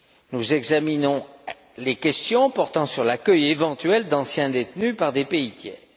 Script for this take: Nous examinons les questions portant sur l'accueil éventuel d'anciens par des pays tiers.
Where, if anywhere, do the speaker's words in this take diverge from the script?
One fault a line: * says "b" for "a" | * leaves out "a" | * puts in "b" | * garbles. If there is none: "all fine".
* puts in "détenus"